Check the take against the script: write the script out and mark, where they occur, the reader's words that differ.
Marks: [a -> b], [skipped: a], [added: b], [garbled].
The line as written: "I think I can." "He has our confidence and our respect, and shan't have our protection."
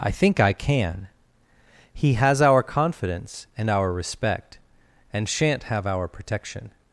"I think I can." "He has our confidence and our respect, and shan't have our protection."